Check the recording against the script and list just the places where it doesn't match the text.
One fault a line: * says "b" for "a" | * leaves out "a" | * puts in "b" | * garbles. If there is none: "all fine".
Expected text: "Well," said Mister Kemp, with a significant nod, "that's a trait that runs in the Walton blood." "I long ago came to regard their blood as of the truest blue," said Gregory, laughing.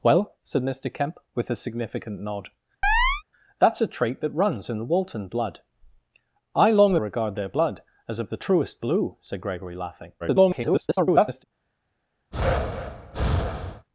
* leaves out "ago came to"
* garbles